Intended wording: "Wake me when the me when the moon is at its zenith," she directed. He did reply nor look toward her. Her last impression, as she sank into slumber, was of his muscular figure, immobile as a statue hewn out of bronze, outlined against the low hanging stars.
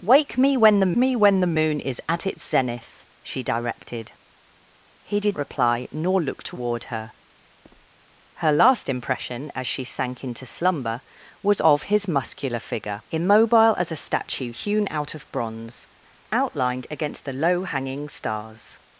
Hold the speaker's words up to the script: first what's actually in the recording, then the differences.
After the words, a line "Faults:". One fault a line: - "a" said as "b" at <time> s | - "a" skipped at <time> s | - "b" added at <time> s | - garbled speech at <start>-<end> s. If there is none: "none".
"Wake me when the me when the moon is at its zenith," she directed. He did reply nor look toward her. Her last impression, as she sank into slumber, was of his muscular figure, immobile as a statue hewn out of bronze, outlined against the low hanging stars.
Faults:
none